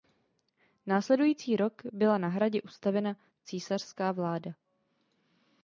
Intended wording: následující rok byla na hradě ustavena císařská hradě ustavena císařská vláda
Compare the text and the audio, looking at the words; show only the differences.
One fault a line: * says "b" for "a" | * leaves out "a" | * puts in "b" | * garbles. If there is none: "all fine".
* leaves out "hradě ustavena císařská"